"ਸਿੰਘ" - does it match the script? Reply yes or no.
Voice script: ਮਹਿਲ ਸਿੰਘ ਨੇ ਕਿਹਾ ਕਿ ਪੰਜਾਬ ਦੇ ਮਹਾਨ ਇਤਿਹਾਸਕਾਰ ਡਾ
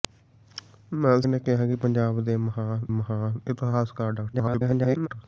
no